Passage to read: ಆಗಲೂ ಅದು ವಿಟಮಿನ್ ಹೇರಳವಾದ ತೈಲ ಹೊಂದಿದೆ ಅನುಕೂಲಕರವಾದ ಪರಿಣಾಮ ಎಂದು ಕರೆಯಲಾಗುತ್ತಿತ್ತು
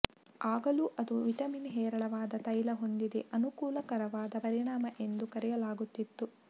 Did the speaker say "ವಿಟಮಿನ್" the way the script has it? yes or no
yes